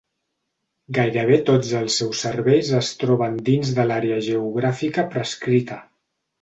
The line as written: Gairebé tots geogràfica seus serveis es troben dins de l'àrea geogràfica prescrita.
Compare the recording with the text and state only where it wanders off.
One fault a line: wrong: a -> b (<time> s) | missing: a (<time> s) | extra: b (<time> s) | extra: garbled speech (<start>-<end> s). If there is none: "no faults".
wrong: geogràfica -> els (1.8 s)